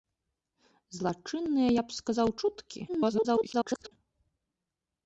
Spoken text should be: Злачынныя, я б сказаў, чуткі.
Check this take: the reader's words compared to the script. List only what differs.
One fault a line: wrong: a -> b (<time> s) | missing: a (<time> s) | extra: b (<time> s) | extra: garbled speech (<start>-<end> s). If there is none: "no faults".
extra: garbled speech (2.9-3.9 s)